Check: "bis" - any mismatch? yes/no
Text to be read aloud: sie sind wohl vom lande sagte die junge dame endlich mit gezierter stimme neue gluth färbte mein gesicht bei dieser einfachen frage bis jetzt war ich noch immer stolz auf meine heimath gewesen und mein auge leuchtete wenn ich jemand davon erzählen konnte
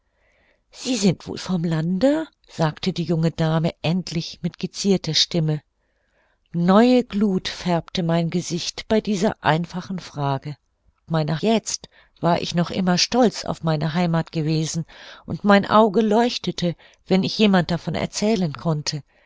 yes